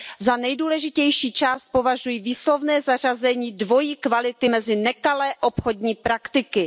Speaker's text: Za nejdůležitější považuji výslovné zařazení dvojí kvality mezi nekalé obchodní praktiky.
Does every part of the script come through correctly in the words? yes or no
no